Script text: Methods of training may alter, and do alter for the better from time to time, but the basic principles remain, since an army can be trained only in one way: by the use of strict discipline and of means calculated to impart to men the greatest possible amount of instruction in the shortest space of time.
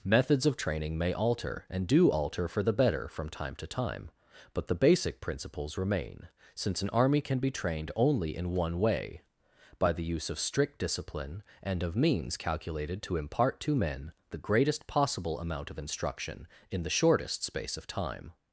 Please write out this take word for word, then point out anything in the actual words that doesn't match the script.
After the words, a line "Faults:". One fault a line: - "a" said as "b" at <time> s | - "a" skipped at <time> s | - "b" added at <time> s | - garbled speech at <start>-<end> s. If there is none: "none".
Methods of training may alter, and do alter for the better from time to time, but the basic principles remain, since an army can be trained only in one way: by the use of strict discipline and of means calculated to impart to men the greatest possible amount of instruction in the shortest space of time.
Faults:
none